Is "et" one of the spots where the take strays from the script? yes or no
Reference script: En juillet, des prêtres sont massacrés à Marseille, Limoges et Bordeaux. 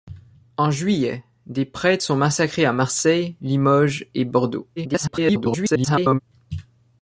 no